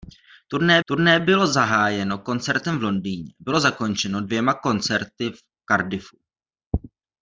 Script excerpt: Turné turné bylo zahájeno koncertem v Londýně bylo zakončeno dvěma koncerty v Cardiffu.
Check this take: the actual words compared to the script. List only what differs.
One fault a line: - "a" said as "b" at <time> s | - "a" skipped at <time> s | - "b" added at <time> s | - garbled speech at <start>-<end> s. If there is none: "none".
none